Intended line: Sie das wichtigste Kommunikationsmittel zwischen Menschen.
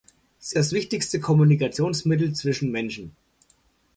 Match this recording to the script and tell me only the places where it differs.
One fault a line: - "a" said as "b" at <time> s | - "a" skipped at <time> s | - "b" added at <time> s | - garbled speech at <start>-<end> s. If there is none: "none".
none